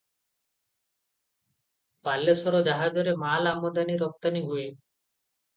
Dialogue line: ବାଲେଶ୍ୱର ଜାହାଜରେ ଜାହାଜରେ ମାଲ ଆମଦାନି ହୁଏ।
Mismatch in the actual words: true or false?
true